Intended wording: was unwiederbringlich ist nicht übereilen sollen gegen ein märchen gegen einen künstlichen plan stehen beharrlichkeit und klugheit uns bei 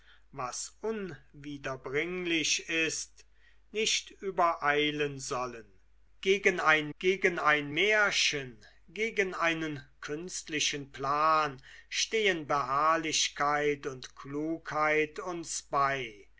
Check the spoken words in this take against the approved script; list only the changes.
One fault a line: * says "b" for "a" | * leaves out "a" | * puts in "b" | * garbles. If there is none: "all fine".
* puts in "gegen ein"